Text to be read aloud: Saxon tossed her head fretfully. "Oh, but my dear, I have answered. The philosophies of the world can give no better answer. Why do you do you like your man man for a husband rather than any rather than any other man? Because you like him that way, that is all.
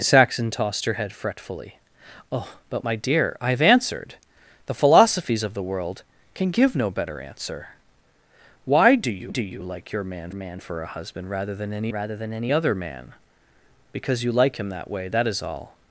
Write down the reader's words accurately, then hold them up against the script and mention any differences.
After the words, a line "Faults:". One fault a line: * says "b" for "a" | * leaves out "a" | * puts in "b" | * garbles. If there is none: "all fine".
Saxon tossed her head fretfully. "Oh, but my dear, I have answered. The philosophies of the world can give no better answer. Why do you do you like your man man for a husband rather than any rather than any other man? Because you like him that way, that is all.
Faults:
all fine